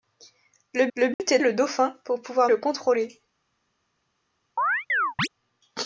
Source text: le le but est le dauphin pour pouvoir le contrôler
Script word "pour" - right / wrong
right